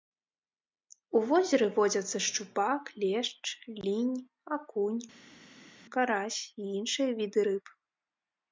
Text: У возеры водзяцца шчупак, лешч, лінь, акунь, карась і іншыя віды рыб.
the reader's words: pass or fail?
pass